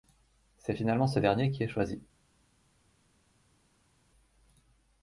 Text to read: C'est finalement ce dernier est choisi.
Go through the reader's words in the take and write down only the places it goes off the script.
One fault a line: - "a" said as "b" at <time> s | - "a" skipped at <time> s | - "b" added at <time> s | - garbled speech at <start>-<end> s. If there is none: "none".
- "qui" added at 1.5 s